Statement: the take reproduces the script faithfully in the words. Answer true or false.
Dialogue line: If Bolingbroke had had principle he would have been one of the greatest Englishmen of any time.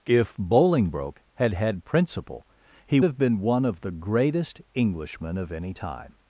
false